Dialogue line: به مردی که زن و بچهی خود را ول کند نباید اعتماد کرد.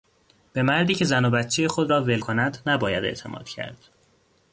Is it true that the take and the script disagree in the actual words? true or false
false